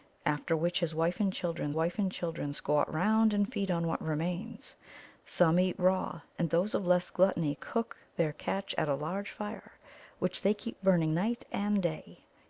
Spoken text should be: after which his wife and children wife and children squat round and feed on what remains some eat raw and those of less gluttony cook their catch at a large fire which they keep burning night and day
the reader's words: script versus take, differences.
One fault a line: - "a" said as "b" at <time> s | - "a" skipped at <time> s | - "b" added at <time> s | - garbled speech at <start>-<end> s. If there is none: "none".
none